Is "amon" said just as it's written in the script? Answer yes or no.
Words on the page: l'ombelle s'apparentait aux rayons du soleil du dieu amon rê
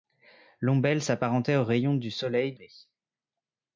no